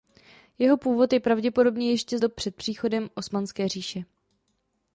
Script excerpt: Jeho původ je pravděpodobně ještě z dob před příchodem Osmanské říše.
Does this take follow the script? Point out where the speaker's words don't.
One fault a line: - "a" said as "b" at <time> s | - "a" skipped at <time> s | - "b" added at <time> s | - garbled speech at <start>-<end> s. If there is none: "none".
none